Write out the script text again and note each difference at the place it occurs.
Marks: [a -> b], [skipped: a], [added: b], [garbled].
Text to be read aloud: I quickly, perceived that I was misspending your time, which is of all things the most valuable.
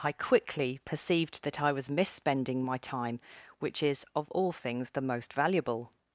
I quickly, perceived that I was misspending [your -> my] time, which is of all things the most valuable.